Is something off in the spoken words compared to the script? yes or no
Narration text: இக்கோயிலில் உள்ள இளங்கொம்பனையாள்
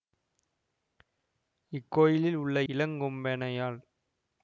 no